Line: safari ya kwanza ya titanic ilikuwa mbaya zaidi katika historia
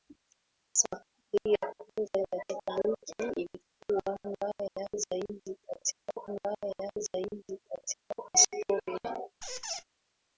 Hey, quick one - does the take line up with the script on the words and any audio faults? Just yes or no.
no